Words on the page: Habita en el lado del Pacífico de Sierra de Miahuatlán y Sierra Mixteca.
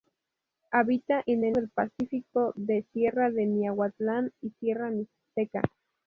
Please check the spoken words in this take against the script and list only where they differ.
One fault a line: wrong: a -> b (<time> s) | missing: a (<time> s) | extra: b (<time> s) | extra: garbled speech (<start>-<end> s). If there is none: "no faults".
missing: lado (1.6 s)